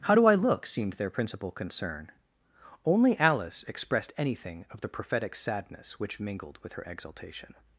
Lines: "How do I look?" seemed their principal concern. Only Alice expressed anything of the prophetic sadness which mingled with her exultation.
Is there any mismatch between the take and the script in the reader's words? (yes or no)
no